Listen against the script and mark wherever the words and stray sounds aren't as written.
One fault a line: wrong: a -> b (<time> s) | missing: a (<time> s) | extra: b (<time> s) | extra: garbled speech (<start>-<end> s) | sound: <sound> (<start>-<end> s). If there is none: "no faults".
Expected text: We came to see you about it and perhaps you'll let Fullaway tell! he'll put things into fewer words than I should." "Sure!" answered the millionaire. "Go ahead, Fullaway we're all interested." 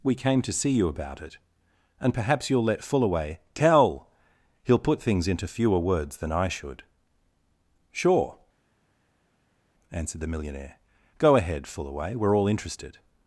no faults